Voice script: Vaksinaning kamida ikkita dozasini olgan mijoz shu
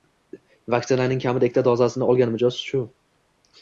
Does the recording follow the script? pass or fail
pass